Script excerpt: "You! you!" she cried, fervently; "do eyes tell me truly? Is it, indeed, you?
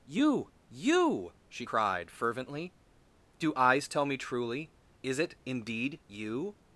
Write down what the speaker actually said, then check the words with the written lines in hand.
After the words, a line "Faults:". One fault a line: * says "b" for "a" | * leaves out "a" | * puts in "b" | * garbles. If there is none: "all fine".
"You! you!" she cried, fervently; "do eyes tell me truly? Is it, indeed, you?
Faults:
all fine